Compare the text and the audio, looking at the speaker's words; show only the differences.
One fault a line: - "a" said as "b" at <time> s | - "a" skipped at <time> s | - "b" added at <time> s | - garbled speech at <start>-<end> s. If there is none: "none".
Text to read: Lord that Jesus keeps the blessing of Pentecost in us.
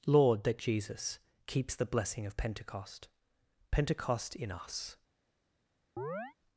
- "Pentecost" added at 3.7 s